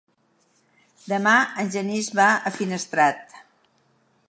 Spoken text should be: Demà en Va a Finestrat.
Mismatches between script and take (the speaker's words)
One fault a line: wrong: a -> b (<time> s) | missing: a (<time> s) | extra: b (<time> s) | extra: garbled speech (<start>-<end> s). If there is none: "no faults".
extra: Genís (1.8 s)